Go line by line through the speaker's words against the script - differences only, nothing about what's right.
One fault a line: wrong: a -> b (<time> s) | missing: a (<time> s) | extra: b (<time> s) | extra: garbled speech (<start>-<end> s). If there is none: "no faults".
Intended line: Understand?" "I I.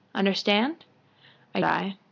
no faults